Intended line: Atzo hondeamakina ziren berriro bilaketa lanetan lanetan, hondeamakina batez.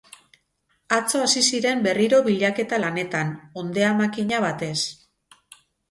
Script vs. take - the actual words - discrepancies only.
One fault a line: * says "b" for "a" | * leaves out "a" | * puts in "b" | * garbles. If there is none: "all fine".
* says "hasi" for "hondeamakina"
* leaves out "lanetan"